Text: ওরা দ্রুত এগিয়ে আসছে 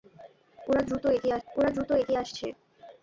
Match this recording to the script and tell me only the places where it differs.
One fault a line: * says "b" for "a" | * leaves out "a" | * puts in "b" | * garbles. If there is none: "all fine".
* puts in "ওরা দ্রুত এগিয়ে"